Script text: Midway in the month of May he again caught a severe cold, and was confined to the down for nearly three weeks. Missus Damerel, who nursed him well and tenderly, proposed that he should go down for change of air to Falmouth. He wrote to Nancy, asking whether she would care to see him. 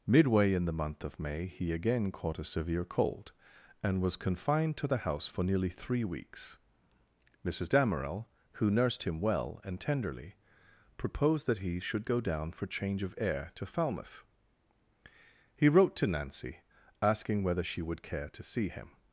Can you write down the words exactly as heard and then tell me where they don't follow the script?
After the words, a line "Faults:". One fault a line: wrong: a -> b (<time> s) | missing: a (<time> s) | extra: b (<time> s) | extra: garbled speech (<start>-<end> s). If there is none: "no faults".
Midway in the month of May he again caught a severe cold, and was confined to the house for nearly three weeks. Missus Damerel, who nursed him well and tenderly, proposed that he should go down for change of air to Falmouth. He wrote to Nancy, asking whether she would care to see him.
Faults:
wrong: down -> house (5.0 s)